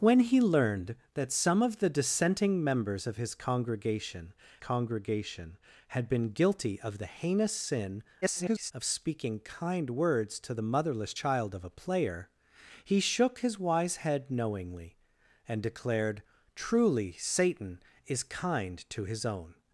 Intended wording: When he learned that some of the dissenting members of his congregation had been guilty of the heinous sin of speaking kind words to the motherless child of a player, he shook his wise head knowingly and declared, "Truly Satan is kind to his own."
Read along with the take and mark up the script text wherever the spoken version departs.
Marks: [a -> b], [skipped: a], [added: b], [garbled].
When he learned that some of the dissenting members of his congregation [added: congregation] had been guilty of the heinous sin [garbled] of speaking kind words to the motherless child of a player, he shook his wise head knowingly and declared, "Truly Satan is kind to his own."